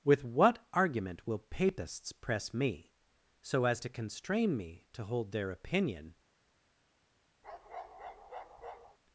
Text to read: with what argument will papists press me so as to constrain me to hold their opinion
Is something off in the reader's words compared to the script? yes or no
no